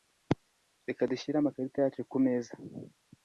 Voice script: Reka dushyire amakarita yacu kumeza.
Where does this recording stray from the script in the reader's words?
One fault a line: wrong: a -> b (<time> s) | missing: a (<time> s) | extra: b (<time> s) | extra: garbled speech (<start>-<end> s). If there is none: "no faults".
no faults